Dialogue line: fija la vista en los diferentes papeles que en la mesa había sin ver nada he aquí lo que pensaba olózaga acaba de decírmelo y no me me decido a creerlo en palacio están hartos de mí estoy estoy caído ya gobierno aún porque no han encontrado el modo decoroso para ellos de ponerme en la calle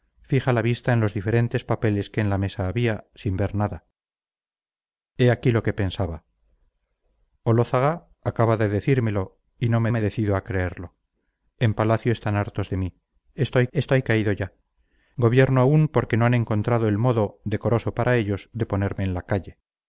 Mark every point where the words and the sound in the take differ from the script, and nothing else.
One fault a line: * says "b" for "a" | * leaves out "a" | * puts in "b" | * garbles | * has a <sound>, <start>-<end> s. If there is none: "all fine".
all fine